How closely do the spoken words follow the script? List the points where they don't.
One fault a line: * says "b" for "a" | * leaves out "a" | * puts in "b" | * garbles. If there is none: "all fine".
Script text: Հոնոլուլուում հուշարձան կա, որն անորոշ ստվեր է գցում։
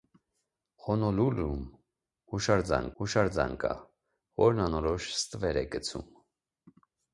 * puts in "հուշարձան"